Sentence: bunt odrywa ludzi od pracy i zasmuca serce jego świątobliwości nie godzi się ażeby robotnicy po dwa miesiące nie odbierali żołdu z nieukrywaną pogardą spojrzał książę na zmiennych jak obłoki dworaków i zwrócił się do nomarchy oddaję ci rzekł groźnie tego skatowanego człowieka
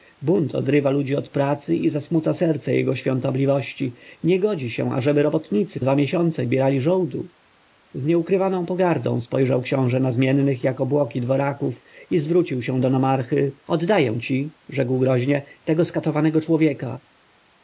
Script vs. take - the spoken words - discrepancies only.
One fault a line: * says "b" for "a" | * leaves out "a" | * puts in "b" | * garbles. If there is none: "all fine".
* leaves out "po"
* leaves out "nie"